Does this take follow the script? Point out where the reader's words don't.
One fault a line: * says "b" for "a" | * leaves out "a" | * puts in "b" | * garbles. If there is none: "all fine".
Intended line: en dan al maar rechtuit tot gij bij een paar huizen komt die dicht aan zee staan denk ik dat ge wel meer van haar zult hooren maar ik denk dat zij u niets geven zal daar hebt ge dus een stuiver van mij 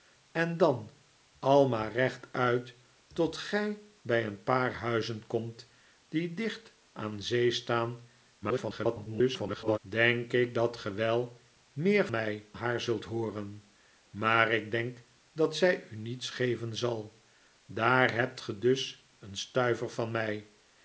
* garbles
* says "mij" for "van"